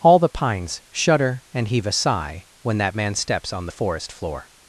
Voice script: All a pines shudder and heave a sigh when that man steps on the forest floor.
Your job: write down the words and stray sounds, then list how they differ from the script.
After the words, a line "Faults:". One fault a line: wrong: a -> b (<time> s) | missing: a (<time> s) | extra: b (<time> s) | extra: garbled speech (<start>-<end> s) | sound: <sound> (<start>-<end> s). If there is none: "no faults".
All the pines shudder and heave a sigh when that man steps on the forest floor.
Faults:
wrong: a -> the (0.2 s)